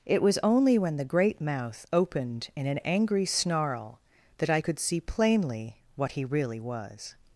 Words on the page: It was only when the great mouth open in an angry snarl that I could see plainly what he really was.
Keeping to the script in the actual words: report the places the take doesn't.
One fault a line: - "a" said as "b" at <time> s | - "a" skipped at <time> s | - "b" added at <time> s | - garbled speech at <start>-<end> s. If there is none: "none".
- "open" said as "opened" at 1.9 s